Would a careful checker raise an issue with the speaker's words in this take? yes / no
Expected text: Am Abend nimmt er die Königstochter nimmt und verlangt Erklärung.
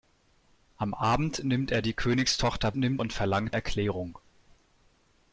no